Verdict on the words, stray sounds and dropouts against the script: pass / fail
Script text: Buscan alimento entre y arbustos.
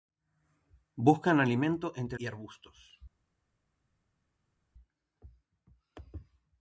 pass